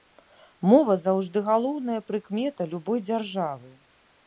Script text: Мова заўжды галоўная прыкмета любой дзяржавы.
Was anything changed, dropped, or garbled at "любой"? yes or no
no